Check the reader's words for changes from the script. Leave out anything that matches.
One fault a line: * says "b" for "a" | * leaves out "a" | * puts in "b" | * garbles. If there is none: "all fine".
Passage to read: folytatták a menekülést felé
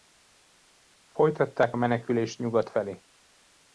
* puts in "nyugat"